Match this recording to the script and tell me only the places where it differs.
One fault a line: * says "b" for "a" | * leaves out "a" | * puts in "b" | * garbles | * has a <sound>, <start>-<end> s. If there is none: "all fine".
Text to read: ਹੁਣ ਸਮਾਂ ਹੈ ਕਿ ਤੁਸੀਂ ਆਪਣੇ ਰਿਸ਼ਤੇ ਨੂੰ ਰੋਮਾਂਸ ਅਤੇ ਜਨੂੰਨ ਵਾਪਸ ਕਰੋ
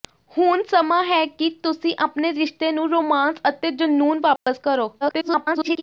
* has a dropout, 4.4-4.5 s
* garbles